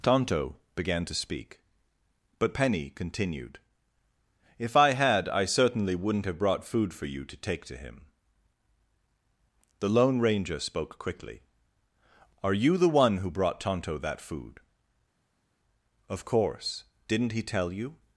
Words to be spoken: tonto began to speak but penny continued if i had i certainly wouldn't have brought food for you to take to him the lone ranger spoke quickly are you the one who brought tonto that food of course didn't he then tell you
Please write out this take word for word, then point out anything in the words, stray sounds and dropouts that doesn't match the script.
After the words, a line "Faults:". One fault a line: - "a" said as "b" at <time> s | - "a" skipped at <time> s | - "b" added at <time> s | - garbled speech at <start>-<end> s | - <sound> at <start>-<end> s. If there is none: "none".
tonto began to speak but penny continued if i had i certainly wouldn't have brought food for you to take to him the lone ranger spoke quickly are you the one who brought tonto that food of course didn't he tell you
Faults:
- "then" skipped at 17.4 s